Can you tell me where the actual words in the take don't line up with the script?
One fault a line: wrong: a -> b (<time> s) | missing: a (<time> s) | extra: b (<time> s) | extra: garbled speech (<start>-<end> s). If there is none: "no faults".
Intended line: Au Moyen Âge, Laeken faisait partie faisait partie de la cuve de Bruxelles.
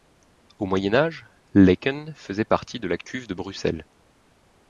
missing: faisait partie (2.8 s)